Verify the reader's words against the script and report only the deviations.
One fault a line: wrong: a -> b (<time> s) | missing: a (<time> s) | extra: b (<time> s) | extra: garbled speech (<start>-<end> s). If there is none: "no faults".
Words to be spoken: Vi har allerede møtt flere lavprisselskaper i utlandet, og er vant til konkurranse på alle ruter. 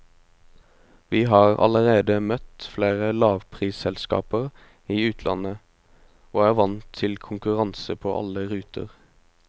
no faults